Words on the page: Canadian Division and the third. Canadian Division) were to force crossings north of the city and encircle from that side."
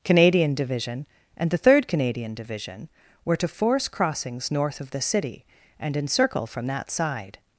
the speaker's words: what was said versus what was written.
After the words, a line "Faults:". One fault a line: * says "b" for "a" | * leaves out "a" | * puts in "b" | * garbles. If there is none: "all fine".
Canadian Division and the third. Canadian Division) were to force crossings north of the city and encircle from that side."
Faults:
all fine